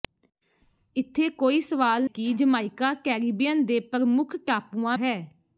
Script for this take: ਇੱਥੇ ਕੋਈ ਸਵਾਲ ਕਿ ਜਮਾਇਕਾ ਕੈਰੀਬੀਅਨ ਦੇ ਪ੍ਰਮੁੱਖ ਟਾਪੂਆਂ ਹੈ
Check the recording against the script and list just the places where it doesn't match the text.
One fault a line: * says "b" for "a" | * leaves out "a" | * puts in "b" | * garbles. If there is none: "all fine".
all fine